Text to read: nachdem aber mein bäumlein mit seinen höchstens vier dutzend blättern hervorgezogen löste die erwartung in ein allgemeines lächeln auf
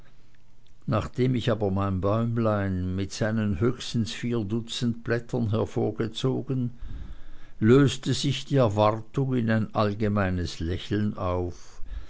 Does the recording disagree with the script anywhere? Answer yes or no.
yes